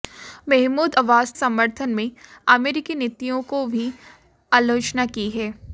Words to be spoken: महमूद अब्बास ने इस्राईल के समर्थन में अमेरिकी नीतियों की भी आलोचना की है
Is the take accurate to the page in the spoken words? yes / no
no